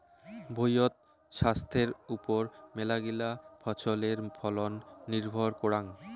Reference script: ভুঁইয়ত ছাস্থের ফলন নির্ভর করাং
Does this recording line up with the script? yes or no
no